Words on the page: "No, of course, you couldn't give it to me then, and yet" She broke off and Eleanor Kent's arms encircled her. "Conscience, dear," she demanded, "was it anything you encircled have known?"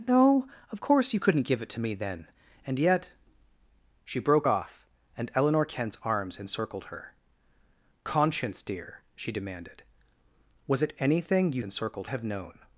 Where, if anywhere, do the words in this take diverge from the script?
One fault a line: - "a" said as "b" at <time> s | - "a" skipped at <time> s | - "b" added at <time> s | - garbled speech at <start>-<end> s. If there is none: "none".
none